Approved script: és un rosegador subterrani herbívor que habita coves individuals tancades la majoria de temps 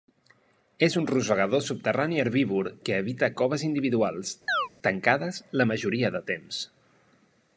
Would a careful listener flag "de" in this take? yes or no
no